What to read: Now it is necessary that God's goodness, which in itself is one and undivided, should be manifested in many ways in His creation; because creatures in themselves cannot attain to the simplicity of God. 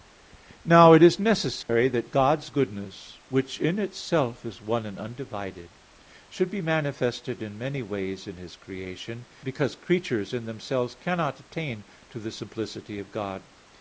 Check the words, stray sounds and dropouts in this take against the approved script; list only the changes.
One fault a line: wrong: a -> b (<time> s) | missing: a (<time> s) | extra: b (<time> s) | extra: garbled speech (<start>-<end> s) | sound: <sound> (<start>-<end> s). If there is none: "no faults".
sound: dropout (1.6-1.7 s)